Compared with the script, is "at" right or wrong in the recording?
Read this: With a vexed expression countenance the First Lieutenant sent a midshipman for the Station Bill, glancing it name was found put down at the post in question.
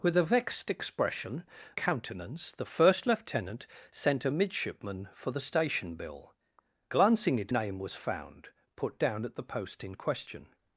right